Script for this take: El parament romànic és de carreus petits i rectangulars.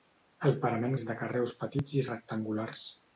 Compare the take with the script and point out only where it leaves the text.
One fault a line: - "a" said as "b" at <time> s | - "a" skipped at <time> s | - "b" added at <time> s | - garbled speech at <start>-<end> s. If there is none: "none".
- "romànic" skipped at 0.9 s